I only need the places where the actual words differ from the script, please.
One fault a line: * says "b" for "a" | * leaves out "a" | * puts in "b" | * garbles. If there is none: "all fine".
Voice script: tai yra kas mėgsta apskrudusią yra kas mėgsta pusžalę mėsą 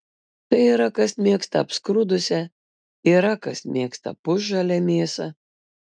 all fine